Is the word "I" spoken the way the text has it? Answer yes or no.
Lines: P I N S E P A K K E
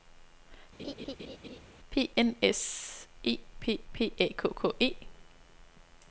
no